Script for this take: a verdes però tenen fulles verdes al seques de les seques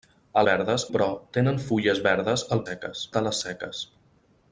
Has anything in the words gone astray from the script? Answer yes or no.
no